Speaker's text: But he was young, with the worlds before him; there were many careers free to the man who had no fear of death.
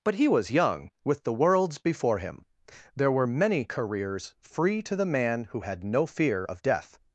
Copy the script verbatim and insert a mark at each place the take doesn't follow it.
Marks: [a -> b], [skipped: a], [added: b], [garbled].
But he was young, with the worlds before him; there were many careers free to the man who had no fear of death.